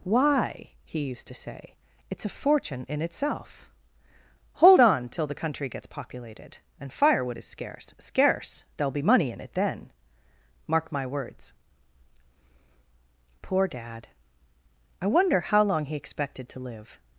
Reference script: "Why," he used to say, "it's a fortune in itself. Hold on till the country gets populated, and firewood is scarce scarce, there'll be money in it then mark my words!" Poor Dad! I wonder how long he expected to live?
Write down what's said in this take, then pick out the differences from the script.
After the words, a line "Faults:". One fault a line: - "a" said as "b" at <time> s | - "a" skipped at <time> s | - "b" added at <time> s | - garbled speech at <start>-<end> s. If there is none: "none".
"Why," he used to say, "it's a fortune in itself. Hold on till the country gets populated, and firewood is scarce scarce, there'll be money in it then mark my words!" Poor Dad! I wonder how long he expected to live?
Faults:
none